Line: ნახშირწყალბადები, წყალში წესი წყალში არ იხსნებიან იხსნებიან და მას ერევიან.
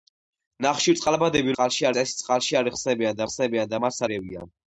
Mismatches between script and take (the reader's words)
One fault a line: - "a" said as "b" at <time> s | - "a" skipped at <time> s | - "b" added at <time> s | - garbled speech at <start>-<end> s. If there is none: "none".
none